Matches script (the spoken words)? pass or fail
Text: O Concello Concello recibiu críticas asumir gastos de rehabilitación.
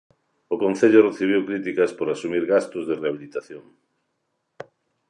fail